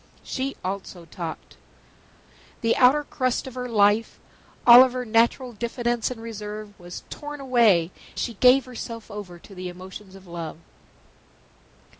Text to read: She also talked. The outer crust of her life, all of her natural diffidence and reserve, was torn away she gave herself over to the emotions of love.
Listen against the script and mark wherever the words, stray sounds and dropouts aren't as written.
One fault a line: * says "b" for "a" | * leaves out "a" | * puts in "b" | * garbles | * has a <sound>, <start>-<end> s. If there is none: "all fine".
all fine